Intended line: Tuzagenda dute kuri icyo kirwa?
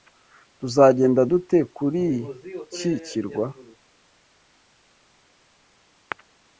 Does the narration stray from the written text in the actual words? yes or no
yes